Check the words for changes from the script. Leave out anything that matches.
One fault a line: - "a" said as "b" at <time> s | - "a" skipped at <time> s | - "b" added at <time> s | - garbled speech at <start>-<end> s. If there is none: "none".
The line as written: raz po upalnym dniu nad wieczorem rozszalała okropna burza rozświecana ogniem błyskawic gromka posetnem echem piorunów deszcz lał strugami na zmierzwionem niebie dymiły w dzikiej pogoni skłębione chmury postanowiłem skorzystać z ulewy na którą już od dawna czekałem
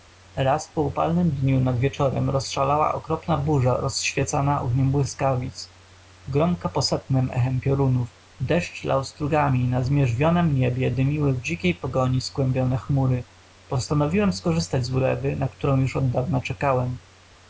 none